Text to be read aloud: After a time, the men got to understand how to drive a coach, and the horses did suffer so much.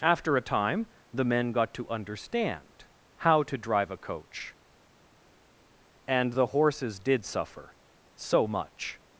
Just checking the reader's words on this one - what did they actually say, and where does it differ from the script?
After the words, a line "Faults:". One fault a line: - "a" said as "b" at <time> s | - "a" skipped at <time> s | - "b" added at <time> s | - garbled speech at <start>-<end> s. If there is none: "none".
After a time, the men got to understand how to drive a coach, and the horses did suffer so much.
Faults:
none